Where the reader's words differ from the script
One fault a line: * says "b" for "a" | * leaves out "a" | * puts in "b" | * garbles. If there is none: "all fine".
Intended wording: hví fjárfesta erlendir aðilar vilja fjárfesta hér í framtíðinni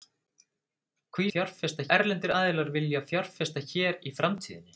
all fine